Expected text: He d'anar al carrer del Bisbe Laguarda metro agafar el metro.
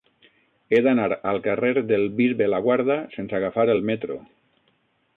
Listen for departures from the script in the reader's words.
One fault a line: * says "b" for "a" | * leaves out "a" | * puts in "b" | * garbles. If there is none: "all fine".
* says "sense" for "metro"